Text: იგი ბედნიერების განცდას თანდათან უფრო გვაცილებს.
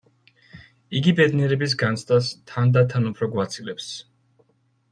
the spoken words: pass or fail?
pass